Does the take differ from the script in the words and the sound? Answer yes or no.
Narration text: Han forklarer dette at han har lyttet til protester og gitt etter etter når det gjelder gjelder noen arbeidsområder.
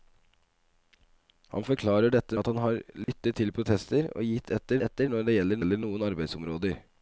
yes